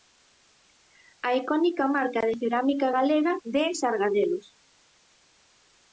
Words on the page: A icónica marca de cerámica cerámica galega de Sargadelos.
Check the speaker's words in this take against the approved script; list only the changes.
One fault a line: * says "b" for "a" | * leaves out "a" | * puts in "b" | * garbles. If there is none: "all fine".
* leaves out "cerámica"